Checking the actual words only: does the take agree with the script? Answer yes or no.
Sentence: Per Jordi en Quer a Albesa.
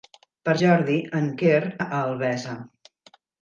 yes